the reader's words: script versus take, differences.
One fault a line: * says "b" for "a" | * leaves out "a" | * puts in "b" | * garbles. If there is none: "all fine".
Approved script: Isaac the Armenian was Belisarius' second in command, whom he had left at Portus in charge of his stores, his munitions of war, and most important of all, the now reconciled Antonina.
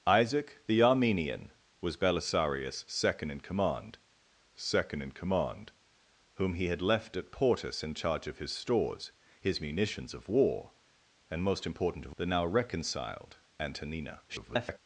* puts in "second in command"
* leaves out "all"
* garbles